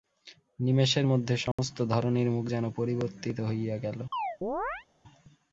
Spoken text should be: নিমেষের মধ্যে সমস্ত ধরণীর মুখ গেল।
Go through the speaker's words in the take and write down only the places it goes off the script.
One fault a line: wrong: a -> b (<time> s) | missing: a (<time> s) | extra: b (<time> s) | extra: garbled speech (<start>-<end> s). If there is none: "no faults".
extra: যেন পরিবর্তিত হইয়া (2.5 s)